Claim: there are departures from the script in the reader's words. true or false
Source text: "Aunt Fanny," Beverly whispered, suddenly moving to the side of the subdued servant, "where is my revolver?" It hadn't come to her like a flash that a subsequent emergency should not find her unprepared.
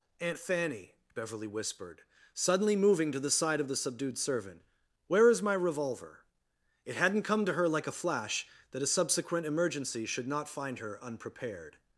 false